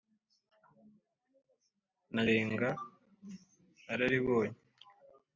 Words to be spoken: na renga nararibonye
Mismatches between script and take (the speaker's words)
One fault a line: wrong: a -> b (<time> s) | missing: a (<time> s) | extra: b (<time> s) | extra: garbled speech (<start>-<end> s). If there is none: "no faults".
no faults